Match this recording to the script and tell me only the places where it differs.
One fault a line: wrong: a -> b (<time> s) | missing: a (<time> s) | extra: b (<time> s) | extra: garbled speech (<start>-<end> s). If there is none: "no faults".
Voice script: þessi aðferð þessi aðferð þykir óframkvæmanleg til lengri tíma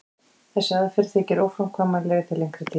missing: þessi aðferð (1.1 s)